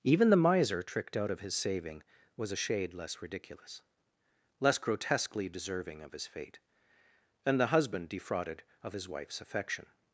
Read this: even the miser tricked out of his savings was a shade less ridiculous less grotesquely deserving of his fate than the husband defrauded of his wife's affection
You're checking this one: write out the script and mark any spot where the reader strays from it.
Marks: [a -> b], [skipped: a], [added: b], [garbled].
even the miser tricked out of his [savings -> saving] was a shade less ridiculous less grotesquely deserving of his fate than the husband defrauded of his wife's affection